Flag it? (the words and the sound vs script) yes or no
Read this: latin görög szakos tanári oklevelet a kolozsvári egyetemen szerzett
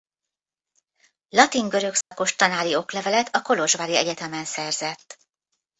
yes